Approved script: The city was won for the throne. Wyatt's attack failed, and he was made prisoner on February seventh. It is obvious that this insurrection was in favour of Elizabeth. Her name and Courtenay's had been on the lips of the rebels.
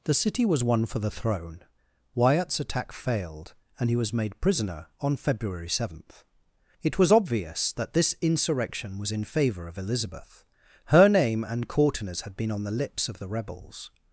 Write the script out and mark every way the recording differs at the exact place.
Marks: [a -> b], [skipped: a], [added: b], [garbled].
The city was won for the throne. Wyatt's attack failed, and he was made prisoner on February seventh. It [is -> was] obvious that this insurrection was in favour of Elizabeth. Her name and Courtenay's had been on the lips of the rebels.